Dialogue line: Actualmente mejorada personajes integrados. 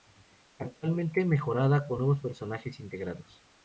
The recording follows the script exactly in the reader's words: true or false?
false